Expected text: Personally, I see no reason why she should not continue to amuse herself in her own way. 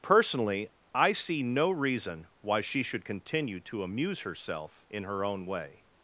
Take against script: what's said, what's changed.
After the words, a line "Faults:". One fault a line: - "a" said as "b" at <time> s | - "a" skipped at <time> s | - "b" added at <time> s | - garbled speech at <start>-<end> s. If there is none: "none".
Personally, I see no reason why she should continue to amuse herself in her own way.
Faults:
- "not" skipped at 3.0 s